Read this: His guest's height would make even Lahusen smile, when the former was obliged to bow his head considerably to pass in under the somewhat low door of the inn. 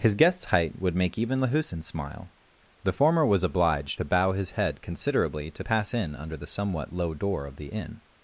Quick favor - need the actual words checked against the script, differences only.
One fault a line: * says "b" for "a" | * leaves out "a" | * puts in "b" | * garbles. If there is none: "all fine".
* leaves out "when"